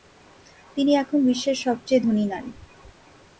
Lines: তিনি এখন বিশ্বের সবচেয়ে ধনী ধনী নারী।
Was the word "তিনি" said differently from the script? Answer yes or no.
no